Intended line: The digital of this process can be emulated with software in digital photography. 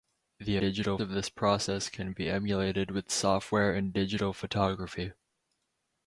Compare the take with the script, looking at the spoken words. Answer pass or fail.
pass